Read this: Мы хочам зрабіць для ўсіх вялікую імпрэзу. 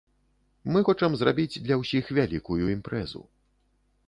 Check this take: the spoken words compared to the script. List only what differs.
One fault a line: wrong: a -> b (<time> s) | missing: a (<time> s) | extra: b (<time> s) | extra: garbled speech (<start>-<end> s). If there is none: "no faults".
no faults